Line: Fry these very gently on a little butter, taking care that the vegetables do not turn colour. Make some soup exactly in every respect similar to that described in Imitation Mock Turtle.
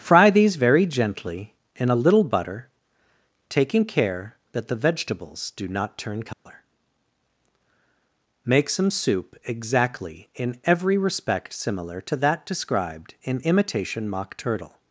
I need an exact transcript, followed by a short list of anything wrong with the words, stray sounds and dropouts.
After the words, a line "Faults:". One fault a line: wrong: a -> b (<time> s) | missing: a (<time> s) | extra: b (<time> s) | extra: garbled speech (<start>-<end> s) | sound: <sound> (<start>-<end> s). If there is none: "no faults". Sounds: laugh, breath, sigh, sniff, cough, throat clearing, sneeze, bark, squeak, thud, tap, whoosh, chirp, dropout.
Fry these very gently in a little butter, taking care that the vegetables do not turn colour. Make some soup exactly in every respect similar to that described in Imitation Mock Turtle.
Faults:
wrong: on -> in (1.8 s)
sound: dropout (6.3-6.5 s)